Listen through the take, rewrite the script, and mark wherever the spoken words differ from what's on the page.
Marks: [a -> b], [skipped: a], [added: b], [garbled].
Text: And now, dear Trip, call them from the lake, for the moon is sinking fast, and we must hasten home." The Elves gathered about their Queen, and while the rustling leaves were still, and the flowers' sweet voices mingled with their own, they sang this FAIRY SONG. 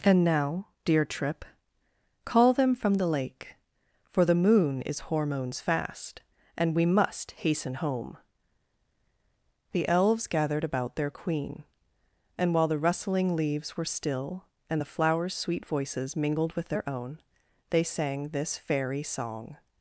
And now, dear Trip, call them from the lake, for the moon is [sinking -> hormones] fast, and we must hasten home." The Elves gathered about their Queen, and while the rustling leaves were still, and the flowers' sweet voices mingled with their own, they sang this FAIRY SONG.